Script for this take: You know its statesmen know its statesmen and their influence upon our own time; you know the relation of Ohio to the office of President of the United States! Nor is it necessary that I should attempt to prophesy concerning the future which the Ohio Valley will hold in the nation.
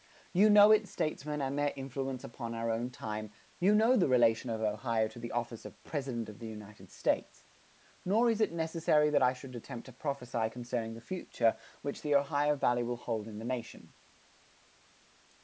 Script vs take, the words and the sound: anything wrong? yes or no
yes